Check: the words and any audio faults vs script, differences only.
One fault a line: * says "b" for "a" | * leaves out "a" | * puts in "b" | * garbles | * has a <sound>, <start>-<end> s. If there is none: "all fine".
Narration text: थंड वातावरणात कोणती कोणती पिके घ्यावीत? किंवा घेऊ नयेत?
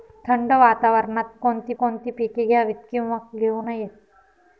all fine